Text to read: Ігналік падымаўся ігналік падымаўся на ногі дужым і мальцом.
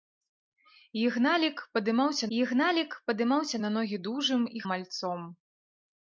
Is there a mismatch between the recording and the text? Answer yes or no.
no